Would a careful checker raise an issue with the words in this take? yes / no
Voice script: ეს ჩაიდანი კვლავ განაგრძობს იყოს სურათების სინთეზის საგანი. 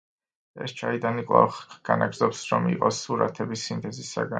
yes